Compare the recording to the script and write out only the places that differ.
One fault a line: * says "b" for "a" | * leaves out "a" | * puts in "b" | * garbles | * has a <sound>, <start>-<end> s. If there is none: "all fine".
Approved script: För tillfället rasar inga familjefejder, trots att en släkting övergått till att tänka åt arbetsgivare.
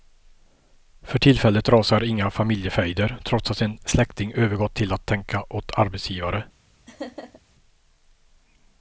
* has a laugh, 6.9-7.4 s